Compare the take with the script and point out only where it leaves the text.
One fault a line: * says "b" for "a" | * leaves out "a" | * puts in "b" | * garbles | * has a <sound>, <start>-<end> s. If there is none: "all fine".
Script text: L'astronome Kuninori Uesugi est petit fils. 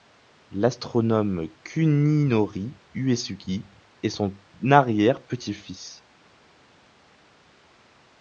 * puts in "son arrière"